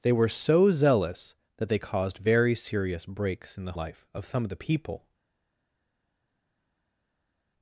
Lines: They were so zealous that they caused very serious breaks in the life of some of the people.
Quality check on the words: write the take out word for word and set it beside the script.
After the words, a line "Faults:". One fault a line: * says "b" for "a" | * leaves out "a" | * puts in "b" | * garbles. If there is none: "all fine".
They were so zealous that they caused very serious breaks in the life of some of the people.
Faults:
all fine